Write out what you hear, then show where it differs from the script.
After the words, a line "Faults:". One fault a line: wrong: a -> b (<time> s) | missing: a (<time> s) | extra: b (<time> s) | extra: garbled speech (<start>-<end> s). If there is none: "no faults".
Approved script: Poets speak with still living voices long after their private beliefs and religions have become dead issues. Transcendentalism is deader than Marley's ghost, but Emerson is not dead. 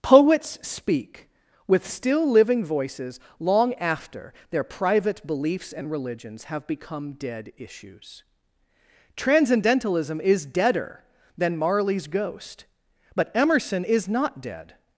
Poets speak with still living voices long after their private beliefs and religions have become dead issues. Transcendentalism is deader than Marley's ghost, but Emerson is not dead.
Faults:
no faults